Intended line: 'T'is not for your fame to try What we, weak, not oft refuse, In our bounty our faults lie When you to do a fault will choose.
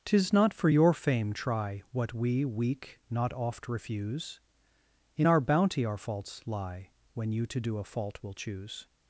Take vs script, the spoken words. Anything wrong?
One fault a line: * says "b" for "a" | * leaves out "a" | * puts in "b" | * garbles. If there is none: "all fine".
* leaves out "to"